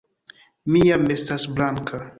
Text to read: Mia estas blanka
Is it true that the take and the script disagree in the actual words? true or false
false